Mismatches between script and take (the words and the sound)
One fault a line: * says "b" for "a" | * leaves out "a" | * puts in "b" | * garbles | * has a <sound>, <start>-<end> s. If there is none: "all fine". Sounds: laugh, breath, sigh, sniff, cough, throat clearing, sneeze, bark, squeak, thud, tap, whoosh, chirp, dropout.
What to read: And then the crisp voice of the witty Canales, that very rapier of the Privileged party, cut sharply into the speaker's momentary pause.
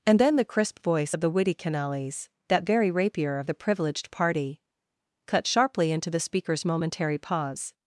all fine